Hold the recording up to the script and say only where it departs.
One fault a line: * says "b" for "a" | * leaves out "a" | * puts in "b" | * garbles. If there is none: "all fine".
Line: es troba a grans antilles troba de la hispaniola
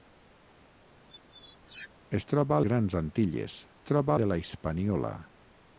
all fine